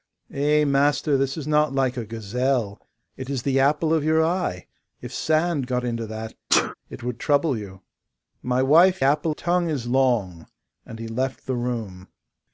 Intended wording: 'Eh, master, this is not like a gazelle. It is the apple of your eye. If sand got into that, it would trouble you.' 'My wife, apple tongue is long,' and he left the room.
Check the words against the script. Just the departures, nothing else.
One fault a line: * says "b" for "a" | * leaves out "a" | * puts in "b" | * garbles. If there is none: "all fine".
all fine